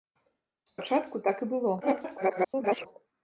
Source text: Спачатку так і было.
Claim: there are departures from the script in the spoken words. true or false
true